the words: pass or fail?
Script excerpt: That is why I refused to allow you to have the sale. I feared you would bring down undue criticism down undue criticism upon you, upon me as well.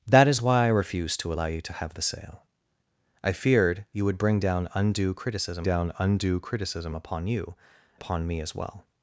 pass